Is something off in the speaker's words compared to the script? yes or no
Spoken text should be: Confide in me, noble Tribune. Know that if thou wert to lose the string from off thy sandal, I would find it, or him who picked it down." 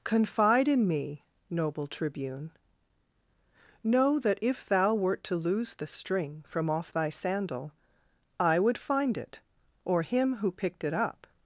yes